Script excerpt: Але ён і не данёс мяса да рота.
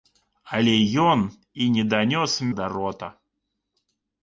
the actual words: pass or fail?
fail